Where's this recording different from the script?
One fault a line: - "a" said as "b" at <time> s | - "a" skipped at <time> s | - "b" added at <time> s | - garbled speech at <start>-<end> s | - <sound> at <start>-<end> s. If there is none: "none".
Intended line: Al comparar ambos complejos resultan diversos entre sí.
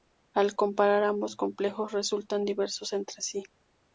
none